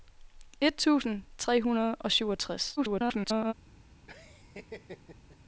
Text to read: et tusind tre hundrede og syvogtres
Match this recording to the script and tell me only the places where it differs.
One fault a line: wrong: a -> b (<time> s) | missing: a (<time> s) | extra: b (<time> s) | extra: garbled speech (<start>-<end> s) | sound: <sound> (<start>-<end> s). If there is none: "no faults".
extra: garbled speech (2.8-3.5 s)
sound: laugh (4.1-5.4 s)